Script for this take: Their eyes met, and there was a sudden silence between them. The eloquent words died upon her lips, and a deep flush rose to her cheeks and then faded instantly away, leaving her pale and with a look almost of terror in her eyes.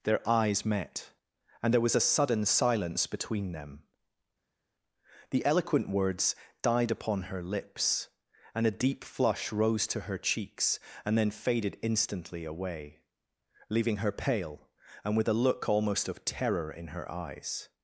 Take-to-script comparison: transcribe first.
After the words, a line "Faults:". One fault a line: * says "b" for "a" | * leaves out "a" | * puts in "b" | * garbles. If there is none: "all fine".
Their eyes met, and there was a sudden silence between them. The eloquent words died upon her lips, and a deep flush rose to her cheeks and then faded instantly away, leaving her pale and with a look almost of terror in her eyes.
Faults:
all fine